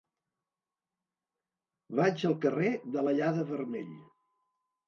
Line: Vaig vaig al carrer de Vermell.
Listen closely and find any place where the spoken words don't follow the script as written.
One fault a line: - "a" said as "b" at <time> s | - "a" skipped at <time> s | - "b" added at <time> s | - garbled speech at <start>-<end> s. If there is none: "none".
- "vaig" skipped at 2.2 s
- "l'Allada" added at 3.1 s